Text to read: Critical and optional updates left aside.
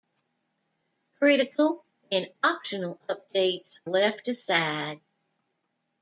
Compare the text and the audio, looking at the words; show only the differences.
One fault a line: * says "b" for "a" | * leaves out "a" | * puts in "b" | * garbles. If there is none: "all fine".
all fine